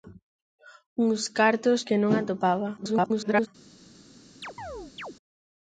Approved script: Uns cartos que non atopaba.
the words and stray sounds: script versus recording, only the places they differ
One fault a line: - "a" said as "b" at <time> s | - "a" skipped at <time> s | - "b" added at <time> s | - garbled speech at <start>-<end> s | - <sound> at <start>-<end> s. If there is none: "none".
- garbled speech at 2.8-3.5 s
- chirp at 4.4-5.2 s